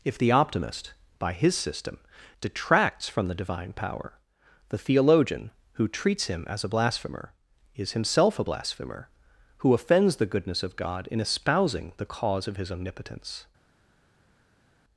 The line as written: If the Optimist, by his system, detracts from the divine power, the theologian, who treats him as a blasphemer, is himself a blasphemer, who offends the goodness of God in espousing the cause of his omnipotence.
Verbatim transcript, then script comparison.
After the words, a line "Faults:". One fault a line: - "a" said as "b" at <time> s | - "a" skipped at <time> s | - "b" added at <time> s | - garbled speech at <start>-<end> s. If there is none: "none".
If the Optimist, by his system, detracts from the divine power, the theologian, who treats him as a blasphemer, is himself a blasphemer, who offends the goodness of God in espousing the cause of his omnipotence.
Faults:
none